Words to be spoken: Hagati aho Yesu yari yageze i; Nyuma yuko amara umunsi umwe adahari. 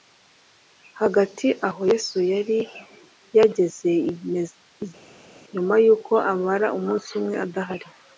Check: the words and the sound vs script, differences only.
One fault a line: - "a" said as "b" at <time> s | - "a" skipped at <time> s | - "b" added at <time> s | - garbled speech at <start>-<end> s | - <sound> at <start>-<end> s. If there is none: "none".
none